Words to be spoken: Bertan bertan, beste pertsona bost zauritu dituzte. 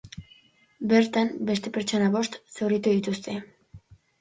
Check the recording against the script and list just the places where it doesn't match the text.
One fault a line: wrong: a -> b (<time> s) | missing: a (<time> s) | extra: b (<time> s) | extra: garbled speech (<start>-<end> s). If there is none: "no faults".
missing: bertan (1.3 s)